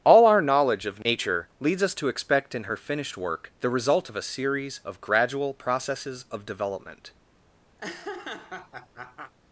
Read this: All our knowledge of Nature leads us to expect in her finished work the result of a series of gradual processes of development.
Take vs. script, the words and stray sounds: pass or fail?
fail